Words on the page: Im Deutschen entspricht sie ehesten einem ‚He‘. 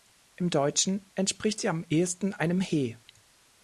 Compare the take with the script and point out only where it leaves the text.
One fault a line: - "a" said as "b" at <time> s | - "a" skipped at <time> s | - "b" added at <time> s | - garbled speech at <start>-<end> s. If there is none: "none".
- "am" added at 1.7 s